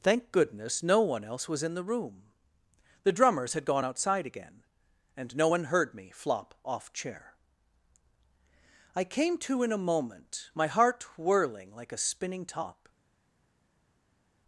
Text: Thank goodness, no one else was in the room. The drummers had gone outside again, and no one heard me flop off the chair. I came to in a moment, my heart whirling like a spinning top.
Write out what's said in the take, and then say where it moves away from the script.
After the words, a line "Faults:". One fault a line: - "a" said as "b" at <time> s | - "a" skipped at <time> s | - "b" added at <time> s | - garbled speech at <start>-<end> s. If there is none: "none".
Thank goodness, no one else was in the room. The drummers had gone outside again, and no one heard me flop off chair. I came to in a moment, my heart whirling like a spinning top.
Faults:
- "the" skipped at 6.9 s